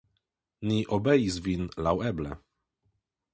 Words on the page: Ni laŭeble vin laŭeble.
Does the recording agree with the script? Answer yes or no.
no